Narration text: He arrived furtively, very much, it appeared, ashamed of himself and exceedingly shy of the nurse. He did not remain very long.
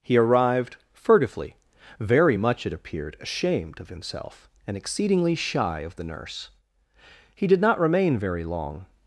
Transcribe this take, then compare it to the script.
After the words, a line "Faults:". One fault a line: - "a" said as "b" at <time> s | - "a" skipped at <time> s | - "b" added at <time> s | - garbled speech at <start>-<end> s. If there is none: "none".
He arrived furtively, very much, it appeared, ashamed of himself and exceedingly shy of the nurse. He did not remain very long.
Faults:
none